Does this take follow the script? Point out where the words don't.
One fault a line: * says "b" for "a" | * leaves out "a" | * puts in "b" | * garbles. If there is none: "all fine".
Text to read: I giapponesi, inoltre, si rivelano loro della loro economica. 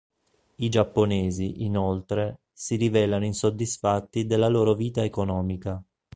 * says "insoddisfatti" for "loro"
* puts in "vita"